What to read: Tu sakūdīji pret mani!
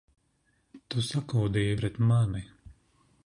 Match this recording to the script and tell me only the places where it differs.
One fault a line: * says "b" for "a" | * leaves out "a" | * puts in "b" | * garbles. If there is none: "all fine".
all fine